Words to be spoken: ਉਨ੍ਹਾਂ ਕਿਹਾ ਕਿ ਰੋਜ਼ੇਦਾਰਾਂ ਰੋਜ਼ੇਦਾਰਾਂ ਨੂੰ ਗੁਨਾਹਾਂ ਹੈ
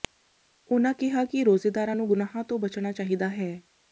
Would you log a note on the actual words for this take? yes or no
yes